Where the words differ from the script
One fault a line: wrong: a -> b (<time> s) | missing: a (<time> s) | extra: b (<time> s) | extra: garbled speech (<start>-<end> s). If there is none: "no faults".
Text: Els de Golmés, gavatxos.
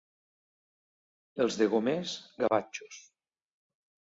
no faults